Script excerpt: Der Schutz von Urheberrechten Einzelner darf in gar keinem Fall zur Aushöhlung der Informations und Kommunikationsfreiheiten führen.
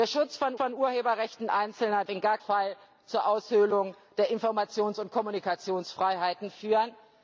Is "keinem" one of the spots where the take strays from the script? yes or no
yes